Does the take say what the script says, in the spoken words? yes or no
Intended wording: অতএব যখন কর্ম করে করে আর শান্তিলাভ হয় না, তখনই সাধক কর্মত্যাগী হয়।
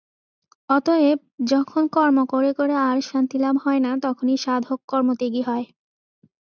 yes